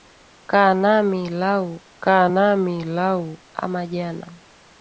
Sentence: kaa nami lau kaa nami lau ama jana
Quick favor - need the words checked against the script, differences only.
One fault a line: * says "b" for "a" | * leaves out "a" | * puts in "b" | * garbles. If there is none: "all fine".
all fine